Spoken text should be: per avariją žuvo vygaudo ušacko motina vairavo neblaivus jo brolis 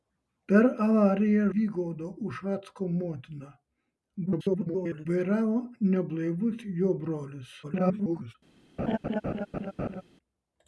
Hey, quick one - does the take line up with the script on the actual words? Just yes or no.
no